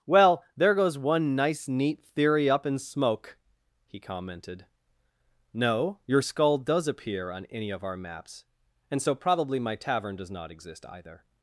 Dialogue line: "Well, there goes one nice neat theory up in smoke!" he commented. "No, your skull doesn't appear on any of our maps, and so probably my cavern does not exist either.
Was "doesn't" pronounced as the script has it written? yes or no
no